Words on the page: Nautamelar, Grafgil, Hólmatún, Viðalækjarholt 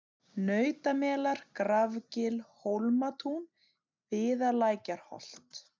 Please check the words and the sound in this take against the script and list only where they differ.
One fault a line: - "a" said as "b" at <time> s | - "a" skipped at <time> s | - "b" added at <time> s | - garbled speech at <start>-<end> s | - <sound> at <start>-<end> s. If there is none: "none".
none